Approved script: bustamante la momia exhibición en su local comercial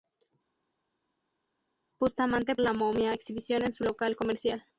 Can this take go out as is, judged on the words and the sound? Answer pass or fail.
pass